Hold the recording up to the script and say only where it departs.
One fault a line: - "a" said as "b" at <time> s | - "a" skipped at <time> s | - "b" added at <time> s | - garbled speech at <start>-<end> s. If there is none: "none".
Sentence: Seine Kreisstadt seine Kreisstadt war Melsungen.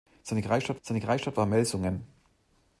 none